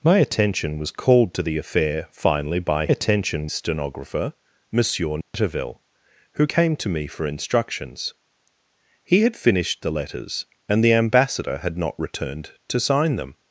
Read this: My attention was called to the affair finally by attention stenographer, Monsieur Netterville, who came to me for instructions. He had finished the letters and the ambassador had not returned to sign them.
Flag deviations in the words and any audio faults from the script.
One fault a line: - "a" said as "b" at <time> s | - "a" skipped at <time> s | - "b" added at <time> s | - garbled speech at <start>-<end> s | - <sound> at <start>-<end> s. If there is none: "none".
- dropout at 5.2-5.3 s